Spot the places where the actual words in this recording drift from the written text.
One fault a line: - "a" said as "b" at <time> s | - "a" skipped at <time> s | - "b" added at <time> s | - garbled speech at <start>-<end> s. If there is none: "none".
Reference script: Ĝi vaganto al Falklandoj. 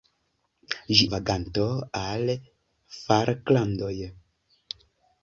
none